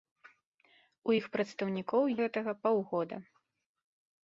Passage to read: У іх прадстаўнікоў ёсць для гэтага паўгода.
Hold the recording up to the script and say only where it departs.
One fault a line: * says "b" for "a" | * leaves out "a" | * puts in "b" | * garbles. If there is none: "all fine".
* leaves out "ёсць для"